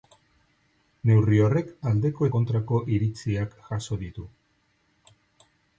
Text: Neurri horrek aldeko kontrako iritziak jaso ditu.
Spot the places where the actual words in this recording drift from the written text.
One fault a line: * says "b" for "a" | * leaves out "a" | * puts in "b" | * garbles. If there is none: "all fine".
all fine